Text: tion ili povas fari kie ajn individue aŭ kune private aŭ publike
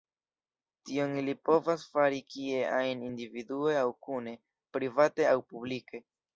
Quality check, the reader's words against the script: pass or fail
pass